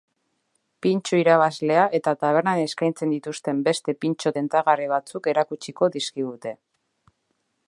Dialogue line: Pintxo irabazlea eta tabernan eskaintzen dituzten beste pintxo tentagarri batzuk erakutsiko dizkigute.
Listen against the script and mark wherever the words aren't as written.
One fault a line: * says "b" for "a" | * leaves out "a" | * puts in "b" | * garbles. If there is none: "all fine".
all fine